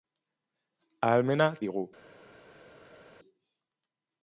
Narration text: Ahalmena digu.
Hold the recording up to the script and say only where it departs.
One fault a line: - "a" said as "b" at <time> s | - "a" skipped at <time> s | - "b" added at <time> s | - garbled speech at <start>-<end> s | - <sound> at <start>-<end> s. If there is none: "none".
none